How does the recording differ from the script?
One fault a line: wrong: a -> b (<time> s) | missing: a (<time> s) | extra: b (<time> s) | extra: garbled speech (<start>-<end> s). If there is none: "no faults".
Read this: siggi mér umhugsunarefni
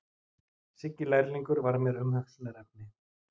extra: lærlingur var (1.1 s)